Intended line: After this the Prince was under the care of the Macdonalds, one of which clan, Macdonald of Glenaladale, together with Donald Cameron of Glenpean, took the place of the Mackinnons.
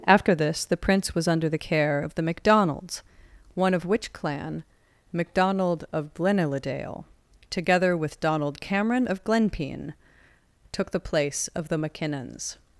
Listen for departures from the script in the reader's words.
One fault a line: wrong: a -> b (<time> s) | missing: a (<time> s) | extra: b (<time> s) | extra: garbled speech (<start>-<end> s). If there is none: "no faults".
no faults